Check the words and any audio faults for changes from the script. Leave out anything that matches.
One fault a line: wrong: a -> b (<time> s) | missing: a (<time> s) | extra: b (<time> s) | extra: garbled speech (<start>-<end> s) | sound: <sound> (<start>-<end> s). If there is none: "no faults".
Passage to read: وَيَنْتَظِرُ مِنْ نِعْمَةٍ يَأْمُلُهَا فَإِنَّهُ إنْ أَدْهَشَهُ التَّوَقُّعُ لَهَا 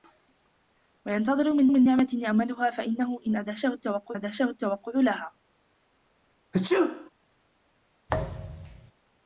extra: مِنْ (1.7 s)
extra: أَدْهَشَهُ التَّوَقُّعُ (4.1 s)
sound: sneeze (6.5-7.1 s)
sound: thud (8.1-8.9 s)